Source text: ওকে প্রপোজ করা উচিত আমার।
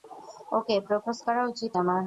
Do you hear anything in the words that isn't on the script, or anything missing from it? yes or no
no